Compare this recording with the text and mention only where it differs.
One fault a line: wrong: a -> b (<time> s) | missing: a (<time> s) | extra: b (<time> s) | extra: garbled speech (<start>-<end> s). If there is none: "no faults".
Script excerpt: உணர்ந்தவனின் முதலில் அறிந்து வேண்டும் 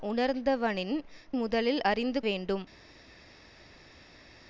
no faults